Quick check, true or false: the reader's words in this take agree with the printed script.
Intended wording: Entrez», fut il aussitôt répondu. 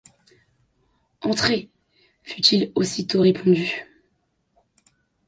true